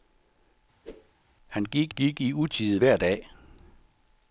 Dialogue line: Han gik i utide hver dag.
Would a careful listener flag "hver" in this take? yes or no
no